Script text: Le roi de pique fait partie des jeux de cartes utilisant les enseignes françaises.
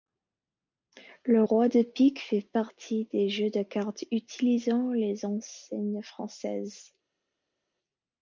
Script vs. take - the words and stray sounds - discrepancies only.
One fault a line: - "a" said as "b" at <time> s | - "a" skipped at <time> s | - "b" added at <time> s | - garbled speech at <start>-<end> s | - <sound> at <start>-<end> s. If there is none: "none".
none